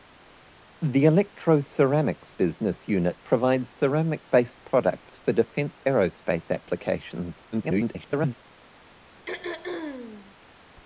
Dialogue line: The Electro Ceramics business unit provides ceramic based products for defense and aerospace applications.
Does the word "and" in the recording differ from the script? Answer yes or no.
yes